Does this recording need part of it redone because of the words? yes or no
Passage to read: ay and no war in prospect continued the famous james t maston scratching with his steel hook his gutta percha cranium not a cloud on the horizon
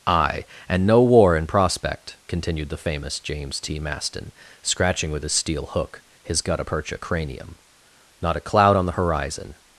no